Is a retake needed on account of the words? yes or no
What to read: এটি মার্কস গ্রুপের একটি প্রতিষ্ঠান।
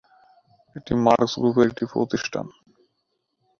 no